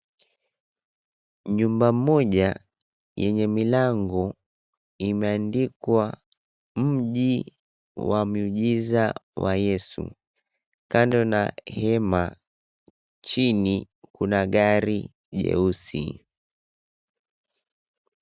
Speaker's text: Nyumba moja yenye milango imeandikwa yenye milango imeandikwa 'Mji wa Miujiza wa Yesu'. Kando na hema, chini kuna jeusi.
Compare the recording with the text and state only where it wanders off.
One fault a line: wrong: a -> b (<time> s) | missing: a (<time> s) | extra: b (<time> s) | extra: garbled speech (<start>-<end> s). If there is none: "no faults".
missing: yenye milango imeandikwa (6.0 s)
extra: gari (14.5 s)